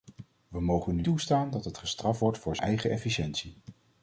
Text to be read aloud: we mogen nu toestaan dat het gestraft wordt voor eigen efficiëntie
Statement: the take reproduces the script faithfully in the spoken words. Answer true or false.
true